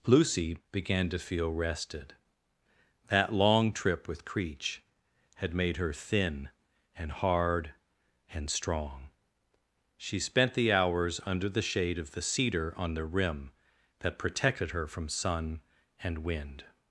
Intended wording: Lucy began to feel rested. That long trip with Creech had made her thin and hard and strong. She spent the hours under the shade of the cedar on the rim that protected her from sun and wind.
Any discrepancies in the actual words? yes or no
no